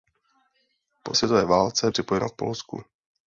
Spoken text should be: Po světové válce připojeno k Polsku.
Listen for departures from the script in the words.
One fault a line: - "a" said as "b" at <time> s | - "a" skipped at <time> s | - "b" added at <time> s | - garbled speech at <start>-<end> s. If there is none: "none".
none